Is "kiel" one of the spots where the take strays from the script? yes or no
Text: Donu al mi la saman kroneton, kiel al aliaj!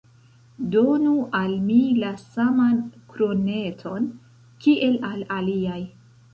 no